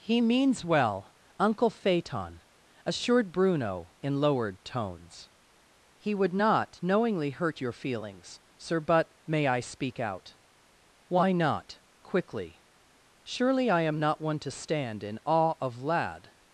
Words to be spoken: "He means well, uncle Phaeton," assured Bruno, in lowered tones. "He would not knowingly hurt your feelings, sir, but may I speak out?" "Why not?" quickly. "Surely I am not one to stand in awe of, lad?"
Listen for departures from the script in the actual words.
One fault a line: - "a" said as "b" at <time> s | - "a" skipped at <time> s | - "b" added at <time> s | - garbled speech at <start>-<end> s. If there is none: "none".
none